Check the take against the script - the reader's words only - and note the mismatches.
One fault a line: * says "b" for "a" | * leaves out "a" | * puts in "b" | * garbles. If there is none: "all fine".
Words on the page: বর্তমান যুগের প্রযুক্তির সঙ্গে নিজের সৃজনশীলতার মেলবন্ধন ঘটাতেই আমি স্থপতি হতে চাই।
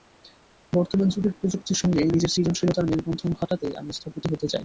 all fine